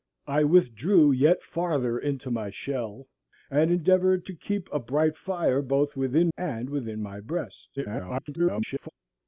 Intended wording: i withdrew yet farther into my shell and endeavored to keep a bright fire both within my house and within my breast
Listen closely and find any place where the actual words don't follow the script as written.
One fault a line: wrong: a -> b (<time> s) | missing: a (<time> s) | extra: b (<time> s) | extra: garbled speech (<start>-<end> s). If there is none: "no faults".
missing: my house (6.3 s)
extra: garbled speech (7.8-8.9 s)